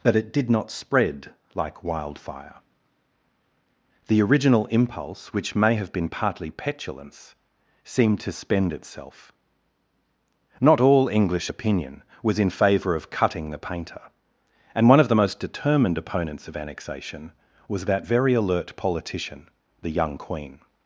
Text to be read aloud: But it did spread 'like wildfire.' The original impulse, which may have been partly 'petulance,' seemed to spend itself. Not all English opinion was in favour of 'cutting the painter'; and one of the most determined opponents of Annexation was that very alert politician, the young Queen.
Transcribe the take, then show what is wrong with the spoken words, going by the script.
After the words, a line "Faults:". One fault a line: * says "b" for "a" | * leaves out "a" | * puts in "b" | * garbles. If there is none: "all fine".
But it did not spread 'like wildfire.' The original impulse, which may have been partly 'petulance,' seemed to spend itself. Not all English opinion was in favour of 'cutting the painter'; and one of the most determined opponents of Annexation was that very alert politician, the young Queen.
Faults:
* puts in "not"